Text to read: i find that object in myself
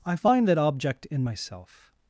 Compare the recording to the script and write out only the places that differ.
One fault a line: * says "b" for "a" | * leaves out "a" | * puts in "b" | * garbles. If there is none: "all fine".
all fine